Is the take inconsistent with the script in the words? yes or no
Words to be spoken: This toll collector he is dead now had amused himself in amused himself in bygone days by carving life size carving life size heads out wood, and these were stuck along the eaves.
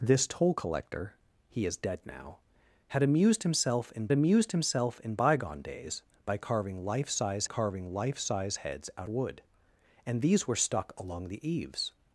no